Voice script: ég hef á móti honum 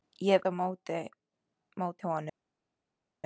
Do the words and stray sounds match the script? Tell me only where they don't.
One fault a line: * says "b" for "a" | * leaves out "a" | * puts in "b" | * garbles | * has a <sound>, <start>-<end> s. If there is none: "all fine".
all fine